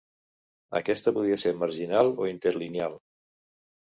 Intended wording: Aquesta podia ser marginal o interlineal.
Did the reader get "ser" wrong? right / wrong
right